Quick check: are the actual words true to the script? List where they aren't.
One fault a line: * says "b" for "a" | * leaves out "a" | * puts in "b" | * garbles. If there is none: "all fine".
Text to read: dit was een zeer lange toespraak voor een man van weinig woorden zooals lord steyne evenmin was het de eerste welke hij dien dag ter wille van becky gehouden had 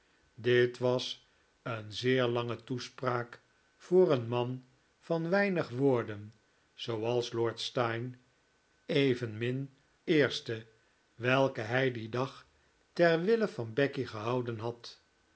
* leaves out "was het de"